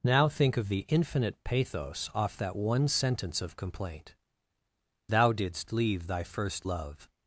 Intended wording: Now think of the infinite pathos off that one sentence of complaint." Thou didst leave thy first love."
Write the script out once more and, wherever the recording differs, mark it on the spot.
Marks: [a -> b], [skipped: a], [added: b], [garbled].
Now think of the infinite pathos off that one sentence of complaint." Thou didst leave thy first love."